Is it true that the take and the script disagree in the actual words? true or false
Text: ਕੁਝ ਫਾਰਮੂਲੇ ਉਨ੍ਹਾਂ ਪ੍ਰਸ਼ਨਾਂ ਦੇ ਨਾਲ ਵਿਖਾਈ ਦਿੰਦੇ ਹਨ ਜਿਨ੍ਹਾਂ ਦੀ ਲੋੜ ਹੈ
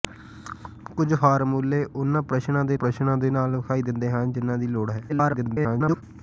true